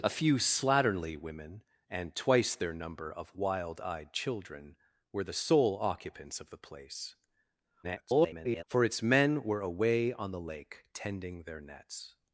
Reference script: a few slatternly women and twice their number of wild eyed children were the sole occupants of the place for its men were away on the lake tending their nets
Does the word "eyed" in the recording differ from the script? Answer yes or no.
no